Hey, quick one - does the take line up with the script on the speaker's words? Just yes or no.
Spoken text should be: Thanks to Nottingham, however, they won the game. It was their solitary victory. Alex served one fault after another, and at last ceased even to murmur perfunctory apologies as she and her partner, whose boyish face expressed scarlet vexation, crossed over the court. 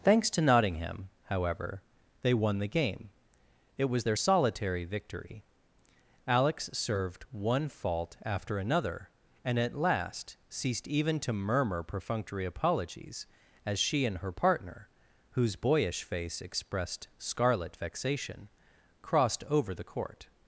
yes